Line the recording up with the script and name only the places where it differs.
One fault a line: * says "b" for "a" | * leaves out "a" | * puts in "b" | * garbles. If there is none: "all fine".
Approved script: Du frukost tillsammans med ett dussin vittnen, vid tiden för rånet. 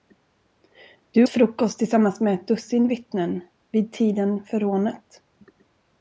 all fine